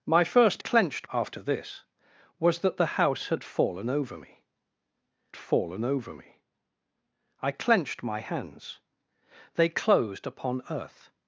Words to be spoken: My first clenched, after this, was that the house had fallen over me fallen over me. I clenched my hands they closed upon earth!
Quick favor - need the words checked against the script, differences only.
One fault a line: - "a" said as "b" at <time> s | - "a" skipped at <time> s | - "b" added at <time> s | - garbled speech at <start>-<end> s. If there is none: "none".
none